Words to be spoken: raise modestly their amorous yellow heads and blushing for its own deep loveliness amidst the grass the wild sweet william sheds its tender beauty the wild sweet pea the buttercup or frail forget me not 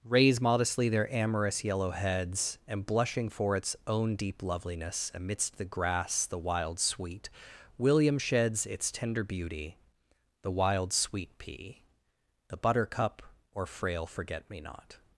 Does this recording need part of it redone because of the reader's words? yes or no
no